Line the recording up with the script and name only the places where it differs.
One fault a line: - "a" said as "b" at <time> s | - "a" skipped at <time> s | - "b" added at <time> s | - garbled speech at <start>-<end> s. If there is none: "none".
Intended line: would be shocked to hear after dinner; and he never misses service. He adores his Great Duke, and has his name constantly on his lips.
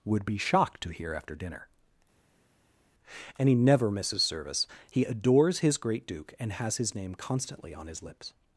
none